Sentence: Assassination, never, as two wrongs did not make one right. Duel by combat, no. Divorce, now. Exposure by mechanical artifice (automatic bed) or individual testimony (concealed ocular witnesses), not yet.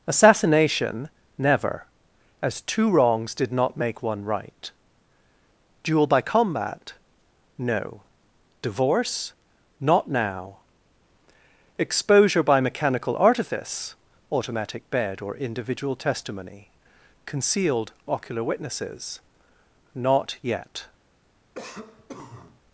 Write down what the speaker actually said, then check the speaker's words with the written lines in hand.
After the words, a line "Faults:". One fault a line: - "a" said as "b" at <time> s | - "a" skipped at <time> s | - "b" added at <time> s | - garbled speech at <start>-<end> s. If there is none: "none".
Assassination, never, as two wrongs did not make one right. Duel by combat, no. Divorce, not now. Exposure by mechanical artifice (automatic bed) or individual testimony (concealed ocular witnesses), not yet.
Faults:
- "not" added at 9.8 s